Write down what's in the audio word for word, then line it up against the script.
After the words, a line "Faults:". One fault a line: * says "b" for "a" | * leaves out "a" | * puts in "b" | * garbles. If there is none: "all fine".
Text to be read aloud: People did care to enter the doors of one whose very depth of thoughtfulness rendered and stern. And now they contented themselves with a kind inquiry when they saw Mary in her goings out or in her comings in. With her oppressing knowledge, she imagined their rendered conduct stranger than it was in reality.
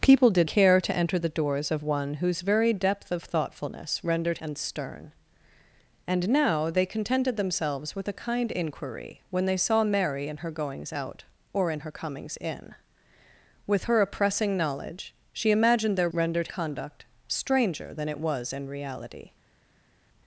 People did care to enter the doors of one whose very depth of thoughtfulness rendered and stern. And now they contented themselves with a kind inquiry when they saw Mary in her goings out or in her comings in. With her oppressing knowledge, she imagined their rendered conduct stranger than it was in reality.
Faults:
all fine